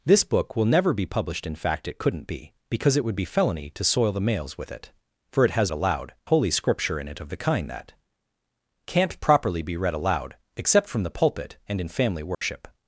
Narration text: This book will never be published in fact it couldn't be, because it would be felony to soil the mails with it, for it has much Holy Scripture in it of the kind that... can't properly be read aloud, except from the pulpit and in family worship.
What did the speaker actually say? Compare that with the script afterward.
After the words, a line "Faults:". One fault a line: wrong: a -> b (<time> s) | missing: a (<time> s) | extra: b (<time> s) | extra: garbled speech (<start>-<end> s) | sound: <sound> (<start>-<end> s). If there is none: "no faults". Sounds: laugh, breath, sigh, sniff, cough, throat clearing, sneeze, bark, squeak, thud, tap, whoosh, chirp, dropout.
This book will never be published in fact it couldn't be, because it would be felony to soil the mails with it, for it has aloud Holy Scripture in it of the kind that... can't properly be read aloud, except from the pulpit and in family worship.
Faults:
wrong: much -> aloud (5.7 s)
sound: dropout (12.3-12.4 s)